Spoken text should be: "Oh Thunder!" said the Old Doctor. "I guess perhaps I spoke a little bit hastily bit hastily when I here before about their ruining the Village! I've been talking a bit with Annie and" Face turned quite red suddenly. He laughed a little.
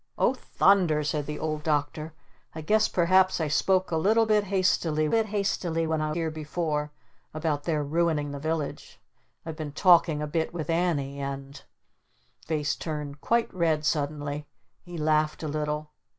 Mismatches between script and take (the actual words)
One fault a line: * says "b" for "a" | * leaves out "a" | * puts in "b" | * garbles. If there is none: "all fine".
all fine